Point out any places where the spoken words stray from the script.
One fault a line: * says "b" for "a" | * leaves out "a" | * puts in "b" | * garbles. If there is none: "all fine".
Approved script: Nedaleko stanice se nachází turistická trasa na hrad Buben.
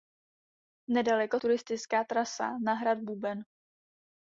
* leaves out "stanice se nachází"